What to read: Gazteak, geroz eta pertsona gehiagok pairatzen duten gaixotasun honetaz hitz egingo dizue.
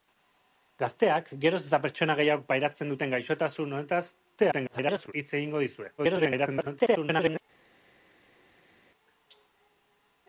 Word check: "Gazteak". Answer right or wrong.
right